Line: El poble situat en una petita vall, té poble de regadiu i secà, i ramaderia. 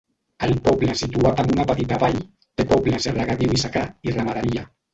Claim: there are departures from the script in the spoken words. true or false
false